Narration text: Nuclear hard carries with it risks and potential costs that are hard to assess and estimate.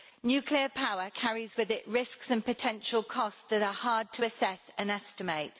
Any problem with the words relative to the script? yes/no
yes